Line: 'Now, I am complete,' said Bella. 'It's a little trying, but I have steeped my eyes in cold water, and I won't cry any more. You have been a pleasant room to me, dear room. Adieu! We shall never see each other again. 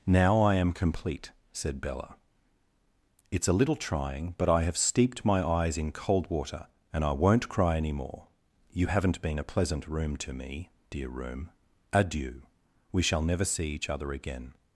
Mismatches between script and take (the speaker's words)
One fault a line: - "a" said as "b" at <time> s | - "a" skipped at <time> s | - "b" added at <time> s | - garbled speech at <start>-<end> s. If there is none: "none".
- "have" said as "haven't" at 8.9 s